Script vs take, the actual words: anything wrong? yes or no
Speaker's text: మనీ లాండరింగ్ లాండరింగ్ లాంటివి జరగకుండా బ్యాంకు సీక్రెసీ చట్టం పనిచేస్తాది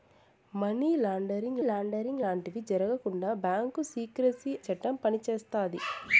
no